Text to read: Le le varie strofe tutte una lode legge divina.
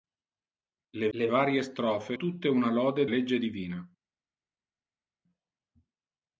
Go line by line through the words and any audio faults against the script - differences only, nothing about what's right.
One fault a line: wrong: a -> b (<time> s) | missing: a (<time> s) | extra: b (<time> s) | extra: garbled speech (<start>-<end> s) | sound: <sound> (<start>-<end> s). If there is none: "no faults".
no faults